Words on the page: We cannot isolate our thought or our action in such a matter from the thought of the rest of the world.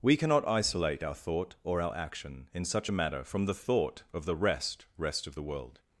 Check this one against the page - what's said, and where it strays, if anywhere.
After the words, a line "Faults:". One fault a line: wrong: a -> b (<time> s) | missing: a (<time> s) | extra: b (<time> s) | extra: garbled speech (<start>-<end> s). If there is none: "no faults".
We cannot isolate our thought or our action in such a matter from the thought of the rest rest of the world.
Faults:
extra: rest (5.0 s)